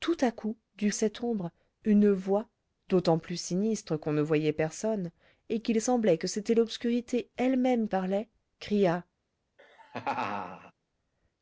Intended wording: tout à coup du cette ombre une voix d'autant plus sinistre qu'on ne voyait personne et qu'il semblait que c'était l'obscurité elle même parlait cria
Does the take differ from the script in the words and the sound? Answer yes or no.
yes